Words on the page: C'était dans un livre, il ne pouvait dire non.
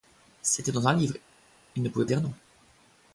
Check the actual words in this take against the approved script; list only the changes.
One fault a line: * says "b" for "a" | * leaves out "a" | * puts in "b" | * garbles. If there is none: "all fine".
all fine